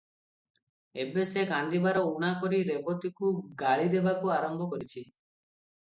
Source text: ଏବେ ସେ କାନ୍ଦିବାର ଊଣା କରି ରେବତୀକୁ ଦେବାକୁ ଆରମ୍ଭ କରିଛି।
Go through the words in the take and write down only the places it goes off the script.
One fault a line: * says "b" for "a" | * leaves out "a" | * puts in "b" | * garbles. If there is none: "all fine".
* puts in "ଗାଳି"